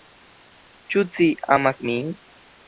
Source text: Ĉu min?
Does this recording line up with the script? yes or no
no